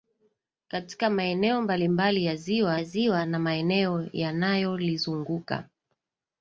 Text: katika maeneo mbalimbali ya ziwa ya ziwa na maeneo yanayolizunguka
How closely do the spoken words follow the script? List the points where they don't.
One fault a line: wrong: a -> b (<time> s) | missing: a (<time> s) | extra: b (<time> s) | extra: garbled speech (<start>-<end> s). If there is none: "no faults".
no faults